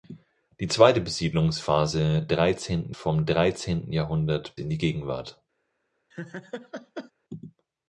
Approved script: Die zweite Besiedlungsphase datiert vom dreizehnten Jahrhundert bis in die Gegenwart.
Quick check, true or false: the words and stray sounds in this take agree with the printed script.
false